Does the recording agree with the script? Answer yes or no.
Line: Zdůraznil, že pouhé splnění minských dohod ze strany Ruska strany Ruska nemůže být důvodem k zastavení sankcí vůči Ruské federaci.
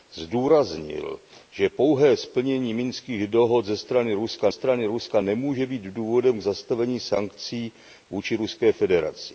yes